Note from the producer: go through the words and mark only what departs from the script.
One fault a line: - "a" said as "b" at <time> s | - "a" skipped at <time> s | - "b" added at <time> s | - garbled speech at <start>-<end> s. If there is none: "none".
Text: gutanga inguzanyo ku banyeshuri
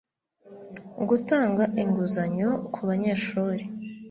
none